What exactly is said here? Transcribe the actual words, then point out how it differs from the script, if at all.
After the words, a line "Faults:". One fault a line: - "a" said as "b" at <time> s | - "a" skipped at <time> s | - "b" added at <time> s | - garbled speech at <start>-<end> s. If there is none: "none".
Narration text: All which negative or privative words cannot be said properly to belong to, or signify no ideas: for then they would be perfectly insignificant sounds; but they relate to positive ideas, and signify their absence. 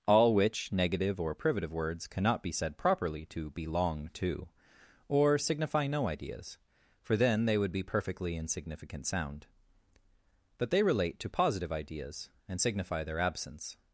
All which negative or privative words cannot be said properly to belong to, or signify no ideas: for then they would be perfectly insignificant sound; but they relate to positive ideas, and signify their absence.
Faults:
- "sounds" said as "sound" at 9.1 s